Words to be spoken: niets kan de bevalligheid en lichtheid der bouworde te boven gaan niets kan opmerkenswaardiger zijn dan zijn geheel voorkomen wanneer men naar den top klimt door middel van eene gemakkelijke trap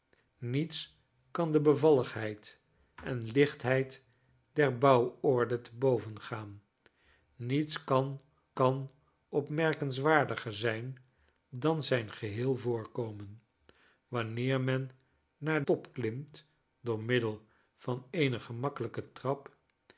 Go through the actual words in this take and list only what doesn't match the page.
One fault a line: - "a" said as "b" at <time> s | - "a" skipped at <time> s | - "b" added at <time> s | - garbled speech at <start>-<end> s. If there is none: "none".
- "kan" added at 8.5 s
- "den" skipped at 15.6 s